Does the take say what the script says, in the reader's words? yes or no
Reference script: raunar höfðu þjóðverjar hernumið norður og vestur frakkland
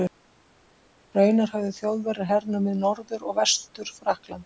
yes